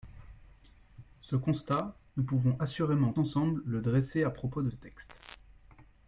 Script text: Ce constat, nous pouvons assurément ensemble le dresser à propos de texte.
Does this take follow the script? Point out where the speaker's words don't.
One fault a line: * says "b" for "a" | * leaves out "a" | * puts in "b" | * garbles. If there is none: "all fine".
all fine